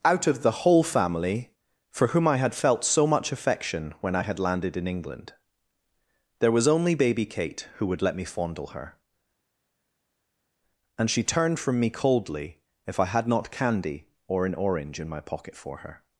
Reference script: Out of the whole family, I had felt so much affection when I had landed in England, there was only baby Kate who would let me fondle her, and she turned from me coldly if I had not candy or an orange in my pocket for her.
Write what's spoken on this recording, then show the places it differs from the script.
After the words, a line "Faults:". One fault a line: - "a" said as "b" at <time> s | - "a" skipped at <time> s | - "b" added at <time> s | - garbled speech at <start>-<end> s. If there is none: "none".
Out of the whole family, for whom I had felt so much affection when I had landed in England, there was only baby Kate who would let me fondle her, and she turned from me coldly if I had not candy or an orange in my pocket for her.
Faults:
- "for whom" added at 1.9 s